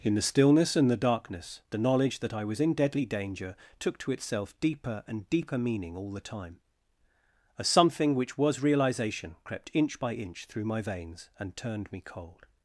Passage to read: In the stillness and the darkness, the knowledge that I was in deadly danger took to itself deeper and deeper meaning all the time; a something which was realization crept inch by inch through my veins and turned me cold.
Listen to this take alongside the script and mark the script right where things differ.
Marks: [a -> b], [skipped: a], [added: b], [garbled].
In the stillness and the darkness, the knowledge that I was in deadly danger took to itself deeper and deeper meaning all the time; a something which was realization crept inch by inch through my veins and turned me cold.